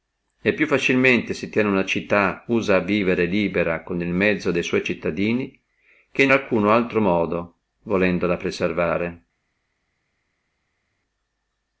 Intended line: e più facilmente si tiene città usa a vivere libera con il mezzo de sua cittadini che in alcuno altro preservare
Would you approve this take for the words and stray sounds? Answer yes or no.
no